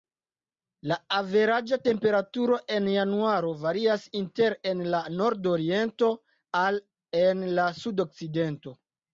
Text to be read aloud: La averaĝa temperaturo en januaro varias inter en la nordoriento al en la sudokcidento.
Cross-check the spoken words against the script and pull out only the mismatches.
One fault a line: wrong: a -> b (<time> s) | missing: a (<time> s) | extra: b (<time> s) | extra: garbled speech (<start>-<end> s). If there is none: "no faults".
no faults